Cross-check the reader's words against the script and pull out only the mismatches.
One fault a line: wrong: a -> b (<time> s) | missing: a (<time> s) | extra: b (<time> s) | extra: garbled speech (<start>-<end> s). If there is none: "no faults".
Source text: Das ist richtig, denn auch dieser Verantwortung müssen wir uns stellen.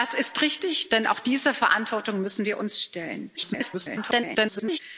extra: garbled speech (3.4-4.8 s)